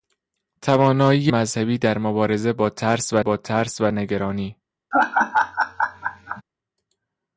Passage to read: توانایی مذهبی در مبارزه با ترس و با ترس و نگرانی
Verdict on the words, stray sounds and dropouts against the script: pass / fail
fail